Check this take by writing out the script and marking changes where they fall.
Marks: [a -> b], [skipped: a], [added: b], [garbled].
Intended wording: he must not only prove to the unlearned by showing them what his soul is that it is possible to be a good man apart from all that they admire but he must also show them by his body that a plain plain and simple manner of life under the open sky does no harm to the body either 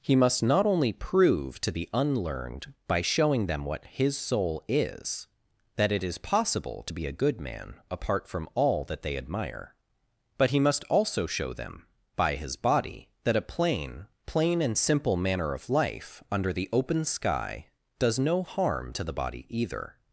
he must not only prove to the unlearned by showing them what his soul is that it is possible to be a good man apart from all that they admire but he must also show them by his body that a plain plain and simple manner of life under the open sky does no harm to the body either